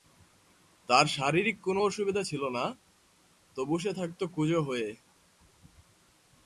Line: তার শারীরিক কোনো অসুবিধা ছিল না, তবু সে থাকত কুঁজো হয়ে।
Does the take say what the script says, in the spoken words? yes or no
yes